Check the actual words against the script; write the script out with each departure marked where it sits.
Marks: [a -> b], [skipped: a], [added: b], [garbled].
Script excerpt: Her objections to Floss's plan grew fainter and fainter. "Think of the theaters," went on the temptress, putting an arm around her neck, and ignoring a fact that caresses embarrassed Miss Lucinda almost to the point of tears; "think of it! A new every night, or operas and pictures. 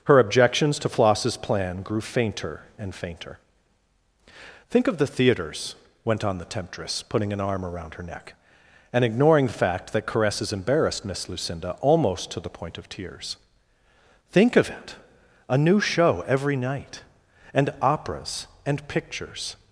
Her objections to Floss's plan grew fainter and fainter. "Think of the theaters," went on the temptress, putting an arm around her neck, and ignoring [a -> the] fact that caresses embarrassed Miss Lucinda almost to the point of tears; "think of it! A new [added: show] every night, [or -> and] operas and pictures.